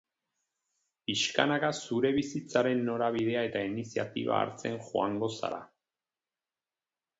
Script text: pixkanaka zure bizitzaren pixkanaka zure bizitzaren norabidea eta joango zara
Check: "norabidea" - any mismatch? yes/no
yes